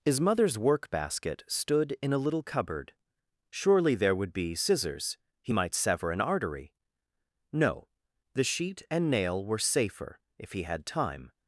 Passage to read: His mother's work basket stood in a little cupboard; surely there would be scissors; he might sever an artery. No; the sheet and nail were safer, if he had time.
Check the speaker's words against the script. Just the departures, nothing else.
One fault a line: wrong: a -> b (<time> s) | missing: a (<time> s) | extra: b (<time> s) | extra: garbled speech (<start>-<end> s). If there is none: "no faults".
no faults